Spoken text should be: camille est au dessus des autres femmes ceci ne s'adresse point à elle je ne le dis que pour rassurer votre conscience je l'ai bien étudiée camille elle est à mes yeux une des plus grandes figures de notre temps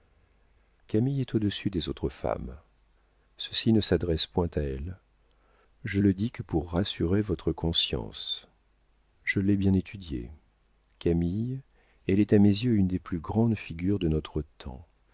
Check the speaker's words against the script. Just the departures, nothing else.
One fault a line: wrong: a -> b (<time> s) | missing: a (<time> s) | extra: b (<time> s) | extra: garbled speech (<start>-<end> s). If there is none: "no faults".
missing: ne (6.0 s)